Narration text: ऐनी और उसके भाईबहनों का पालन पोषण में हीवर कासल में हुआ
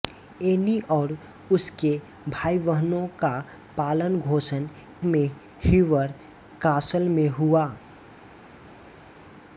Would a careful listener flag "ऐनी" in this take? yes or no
no